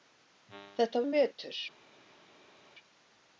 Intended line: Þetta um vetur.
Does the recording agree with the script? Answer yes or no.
yes